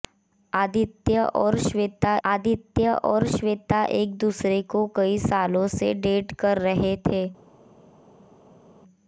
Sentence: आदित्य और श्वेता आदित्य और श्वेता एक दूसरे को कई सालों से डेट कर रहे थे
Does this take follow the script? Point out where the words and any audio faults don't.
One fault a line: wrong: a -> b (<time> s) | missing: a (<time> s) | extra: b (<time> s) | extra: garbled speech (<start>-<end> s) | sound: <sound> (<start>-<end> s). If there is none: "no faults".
no faults